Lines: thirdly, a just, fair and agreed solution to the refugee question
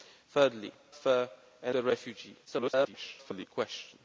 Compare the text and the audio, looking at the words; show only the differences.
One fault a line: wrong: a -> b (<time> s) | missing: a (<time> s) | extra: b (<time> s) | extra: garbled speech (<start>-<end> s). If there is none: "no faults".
missing: a just (0.7 s)
missing: agreed solution to (1.7 s)
extra: garbled speech (2.5-3.5 s)